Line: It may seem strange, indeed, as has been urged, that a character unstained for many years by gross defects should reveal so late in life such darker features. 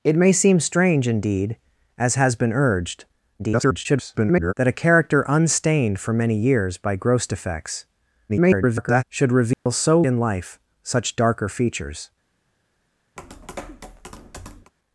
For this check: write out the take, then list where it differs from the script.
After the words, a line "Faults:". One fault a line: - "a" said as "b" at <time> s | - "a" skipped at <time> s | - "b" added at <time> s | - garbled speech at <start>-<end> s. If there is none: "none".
It may seem strange, indeed, as has been urged, [garbled] that a character unstained for many years by gross defects [garbled] should reveal so in life such darker features.
Faults:
- garbled speech at 3.4-4.5 s
- garbled speech at 8.3-9.0 s
- "late" skipped at 10.0 s